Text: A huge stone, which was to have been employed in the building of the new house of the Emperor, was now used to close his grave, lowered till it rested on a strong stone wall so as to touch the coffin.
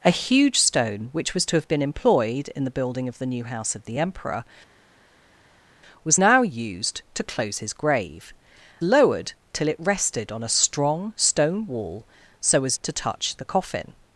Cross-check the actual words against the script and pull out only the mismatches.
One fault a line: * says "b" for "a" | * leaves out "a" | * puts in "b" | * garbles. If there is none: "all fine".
all fine